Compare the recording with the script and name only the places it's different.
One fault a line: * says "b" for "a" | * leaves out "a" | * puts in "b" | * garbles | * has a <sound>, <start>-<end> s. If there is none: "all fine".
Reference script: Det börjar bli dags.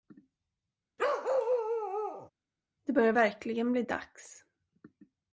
* has a bark, 1.0-2.3 s
* puts in "verkligen"